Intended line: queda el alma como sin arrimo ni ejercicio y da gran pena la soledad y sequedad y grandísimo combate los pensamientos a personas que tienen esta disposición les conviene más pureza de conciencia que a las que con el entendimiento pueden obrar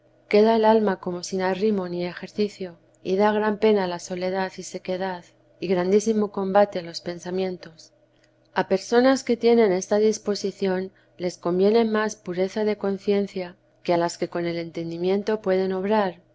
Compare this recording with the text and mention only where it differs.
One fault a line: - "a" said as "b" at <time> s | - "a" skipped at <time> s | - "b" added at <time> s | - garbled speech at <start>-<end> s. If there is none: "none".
none